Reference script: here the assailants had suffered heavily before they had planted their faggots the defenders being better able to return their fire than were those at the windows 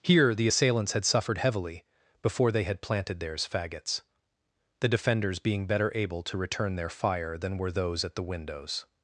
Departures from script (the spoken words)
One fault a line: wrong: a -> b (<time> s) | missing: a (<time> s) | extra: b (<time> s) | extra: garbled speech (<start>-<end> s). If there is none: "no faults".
wrong: their -> theirs (3.2 s)